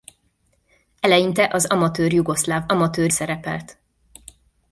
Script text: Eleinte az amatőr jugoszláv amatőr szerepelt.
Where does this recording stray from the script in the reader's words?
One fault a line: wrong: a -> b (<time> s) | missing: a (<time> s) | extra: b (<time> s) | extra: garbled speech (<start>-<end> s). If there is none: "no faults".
no faults